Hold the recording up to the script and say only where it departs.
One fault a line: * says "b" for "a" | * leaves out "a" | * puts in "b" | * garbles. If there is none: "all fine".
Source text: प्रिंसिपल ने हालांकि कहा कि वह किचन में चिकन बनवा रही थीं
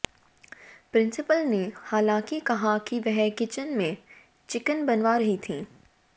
all fine